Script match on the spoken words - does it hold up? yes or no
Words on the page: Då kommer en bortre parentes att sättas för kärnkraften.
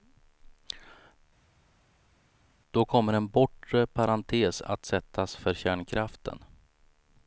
yes